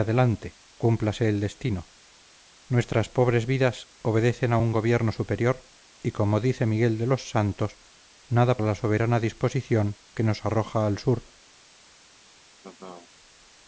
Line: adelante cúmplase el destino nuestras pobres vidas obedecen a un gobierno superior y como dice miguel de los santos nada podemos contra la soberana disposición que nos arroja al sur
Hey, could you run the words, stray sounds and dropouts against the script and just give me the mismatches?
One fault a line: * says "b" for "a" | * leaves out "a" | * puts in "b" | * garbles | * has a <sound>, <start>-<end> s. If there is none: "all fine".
* leaves out "podemos contra"
* has a laugh, 12.6-13.1 s